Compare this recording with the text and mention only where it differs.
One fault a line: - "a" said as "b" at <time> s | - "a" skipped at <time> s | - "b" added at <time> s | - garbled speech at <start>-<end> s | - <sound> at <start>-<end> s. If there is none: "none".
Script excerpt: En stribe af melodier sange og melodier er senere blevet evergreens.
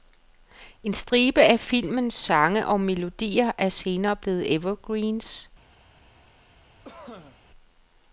- "melodier" said as "filmens" at 1.6 s
- cough at 6.8-7.4 s